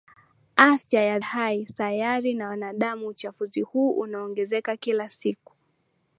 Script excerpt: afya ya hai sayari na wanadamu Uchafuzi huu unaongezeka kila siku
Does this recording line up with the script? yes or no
yes